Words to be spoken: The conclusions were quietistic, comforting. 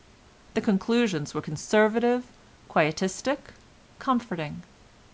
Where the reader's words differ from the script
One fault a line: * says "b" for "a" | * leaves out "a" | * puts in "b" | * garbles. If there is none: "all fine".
* puts in "conservative"